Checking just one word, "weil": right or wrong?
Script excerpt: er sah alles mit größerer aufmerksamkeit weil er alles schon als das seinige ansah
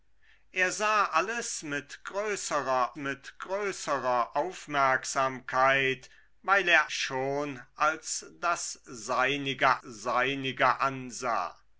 right